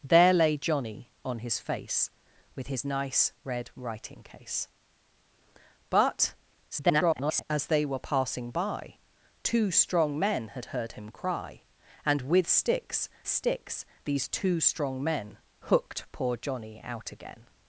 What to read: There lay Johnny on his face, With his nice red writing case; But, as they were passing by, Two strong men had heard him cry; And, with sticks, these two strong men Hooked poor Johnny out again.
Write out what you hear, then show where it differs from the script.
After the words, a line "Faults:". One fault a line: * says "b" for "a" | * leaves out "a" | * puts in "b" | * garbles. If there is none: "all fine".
There lay Johnny on his face, With his nice red writing case; But, [garbled] as they were passing by, Two strong men had heard him cry; And, with sticks sticks, these two strong men Hooked poor Johnny out again.
Faults:
* garbles
* puts in "sticks"